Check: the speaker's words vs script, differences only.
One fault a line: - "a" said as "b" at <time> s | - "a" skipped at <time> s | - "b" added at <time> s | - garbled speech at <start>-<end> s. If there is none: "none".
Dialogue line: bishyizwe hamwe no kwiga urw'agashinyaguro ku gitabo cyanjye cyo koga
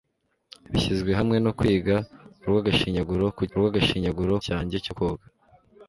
- "gitabo" said as "urw'agashinyaguro" at 3.5 s